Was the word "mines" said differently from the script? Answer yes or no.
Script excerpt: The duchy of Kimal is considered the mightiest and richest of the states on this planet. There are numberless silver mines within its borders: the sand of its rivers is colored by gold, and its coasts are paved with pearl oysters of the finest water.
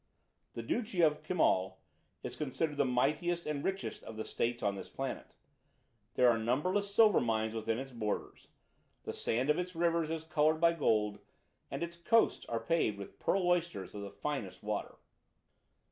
no